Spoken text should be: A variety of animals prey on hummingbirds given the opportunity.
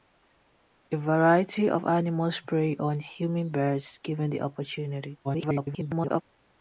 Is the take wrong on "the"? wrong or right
right